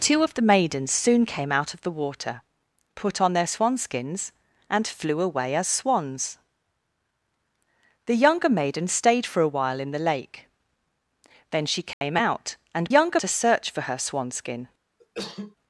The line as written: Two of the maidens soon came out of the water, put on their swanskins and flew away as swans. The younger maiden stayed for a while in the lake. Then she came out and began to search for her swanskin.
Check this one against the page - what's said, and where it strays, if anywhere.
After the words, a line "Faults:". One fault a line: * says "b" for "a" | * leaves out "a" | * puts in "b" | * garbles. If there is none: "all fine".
Two of the maidens soon came out of the water, put on their swanskins and flew away as swans. The younger maiden stayed for a while in the lake. Then she came out and younger to search for her swanskin.
Faults:
* says "younger" for "began"